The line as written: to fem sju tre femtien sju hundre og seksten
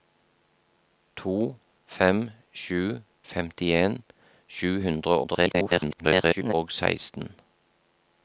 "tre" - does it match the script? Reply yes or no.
no